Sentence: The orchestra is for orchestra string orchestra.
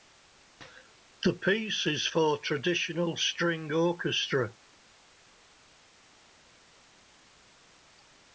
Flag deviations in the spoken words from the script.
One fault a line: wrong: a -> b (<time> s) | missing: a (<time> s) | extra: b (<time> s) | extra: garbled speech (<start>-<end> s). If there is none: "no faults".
wrong: orchestra -> piece (1.4 s)
wrong: orchestra -> traditional (2.4 s)